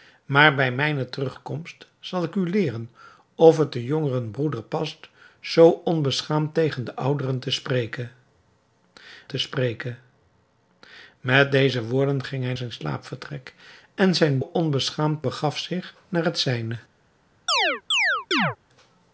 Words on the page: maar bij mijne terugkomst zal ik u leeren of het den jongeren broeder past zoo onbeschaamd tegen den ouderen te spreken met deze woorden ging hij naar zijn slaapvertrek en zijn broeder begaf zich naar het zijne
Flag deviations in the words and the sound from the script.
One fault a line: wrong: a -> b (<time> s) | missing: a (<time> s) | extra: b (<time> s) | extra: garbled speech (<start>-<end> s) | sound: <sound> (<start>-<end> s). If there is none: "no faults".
extra: te spreken (9.3 s)
missing: naar (12.5 s)
wrong: broeder -> onbeschaamd (14.4 s)
sound: chirp (17.5-18.6 s)